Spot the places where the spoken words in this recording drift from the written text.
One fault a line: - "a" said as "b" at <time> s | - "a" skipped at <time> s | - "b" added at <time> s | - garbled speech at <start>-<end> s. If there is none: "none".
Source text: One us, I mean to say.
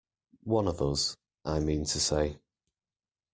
- "of" added at 0.7 s